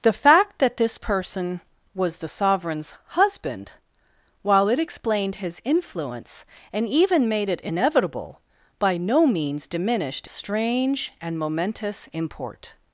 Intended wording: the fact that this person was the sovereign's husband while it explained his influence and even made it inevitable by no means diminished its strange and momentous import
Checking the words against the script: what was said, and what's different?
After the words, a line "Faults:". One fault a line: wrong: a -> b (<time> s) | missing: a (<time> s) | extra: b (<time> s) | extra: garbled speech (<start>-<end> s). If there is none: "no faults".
the fact that this person was the sovereign's husband while it explained his influence and even made it inevitable by no means diminished strange and momentous import
Faults:
missing: its (10.3 s)